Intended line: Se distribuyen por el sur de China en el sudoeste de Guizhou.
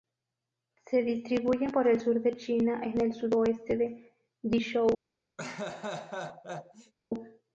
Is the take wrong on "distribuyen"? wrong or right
right